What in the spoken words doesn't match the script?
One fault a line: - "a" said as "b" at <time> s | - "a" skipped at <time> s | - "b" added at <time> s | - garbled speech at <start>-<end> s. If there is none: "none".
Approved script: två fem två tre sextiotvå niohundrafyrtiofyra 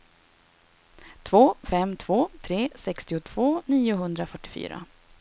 none